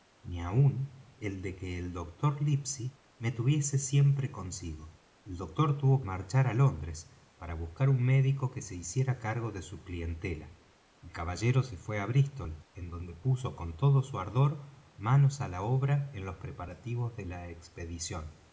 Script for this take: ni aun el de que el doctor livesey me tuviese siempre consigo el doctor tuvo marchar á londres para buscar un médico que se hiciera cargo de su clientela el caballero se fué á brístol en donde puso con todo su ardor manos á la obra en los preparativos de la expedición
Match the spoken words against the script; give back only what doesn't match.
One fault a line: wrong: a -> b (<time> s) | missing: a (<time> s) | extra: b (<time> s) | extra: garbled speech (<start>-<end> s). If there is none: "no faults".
no faults